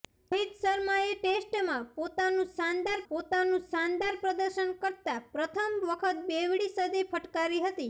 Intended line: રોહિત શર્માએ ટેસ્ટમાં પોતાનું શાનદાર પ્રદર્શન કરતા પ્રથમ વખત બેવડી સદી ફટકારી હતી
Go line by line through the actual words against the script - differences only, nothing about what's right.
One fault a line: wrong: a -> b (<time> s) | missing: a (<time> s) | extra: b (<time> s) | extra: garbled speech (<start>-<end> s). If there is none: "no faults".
extra: પોતાનું શાનદાર (3.1 s)